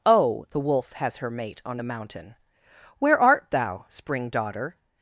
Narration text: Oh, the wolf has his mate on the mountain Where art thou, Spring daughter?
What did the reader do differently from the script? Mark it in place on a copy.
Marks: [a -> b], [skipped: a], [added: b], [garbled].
Oh, the wolf has [his -> her] mate on the mountain Where art thou, Spring daughter?